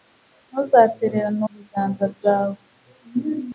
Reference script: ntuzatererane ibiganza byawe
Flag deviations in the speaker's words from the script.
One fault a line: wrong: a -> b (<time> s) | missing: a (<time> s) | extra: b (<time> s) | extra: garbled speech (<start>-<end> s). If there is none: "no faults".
no faults